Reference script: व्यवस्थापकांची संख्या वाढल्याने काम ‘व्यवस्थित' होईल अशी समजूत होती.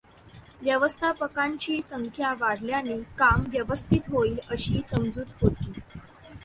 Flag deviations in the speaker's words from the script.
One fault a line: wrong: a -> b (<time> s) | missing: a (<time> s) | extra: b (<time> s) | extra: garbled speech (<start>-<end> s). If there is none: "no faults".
no faults